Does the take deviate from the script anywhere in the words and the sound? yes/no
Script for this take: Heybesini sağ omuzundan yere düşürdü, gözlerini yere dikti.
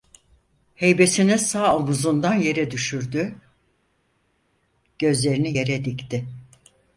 no